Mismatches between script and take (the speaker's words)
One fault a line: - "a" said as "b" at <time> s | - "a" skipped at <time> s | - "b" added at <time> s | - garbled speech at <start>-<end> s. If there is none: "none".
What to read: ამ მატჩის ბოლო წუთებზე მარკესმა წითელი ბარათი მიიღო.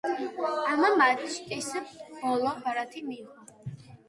- "წუთებზე მარკესმა წითელი" skipped at 2.5 s